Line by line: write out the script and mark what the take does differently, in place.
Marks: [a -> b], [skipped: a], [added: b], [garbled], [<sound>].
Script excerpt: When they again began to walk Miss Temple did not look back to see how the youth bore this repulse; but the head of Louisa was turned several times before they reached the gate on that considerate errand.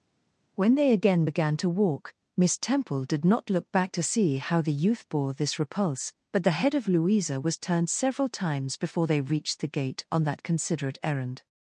When they again began to walk Miss Temple did not look back to see how the youth bore this repulse; but the head of Louisa was turned several times before they reached the gate on that considerate errand.